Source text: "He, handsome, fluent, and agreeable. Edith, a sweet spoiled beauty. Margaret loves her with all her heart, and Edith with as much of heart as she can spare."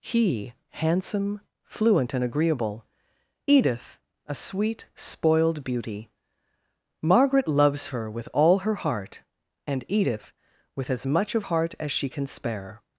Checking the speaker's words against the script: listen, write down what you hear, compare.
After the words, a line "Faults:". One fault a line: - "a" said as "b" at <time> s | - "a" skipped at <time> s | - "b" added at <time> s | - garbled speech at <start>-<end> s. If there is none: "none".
"He, handsome, fluent, and agreeable. Edith, a sweet spoiled beauty. Margaret loves her with all her heart, and Edith with as much of heart as she can spare."
Faults:
none